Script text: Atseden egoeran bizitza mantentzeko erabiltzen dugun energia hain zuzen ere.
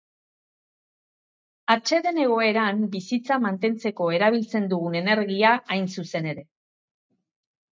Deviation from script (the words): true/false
false